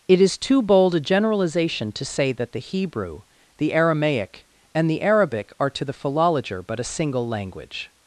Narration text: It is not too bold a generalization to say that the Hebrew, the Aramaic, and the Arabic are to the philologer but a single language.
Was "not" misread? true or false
true